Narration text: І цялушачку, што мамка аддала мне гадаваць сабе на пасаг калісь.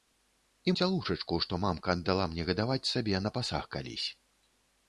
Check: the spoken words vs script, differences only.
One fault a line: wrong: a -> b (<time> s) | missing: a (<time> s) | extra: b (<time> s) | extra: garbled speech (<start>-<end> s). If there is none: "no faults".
no faults